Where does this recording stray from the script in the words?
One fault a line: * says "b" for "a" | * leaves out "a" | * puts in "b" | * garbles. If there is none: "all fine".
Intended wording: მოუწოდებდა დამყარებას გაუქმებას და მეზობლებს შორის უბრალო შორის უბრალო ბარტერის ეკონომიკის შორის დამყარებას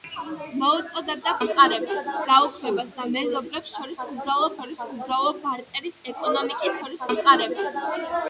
all fine